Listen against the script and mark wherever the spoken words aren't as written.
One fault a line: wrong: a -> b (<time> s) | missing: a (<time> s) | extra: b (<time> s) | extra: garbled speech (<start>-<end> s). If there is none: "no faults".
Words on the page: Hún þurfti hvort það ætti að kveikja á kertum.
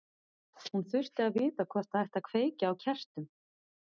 extra: að vita (1.2 s)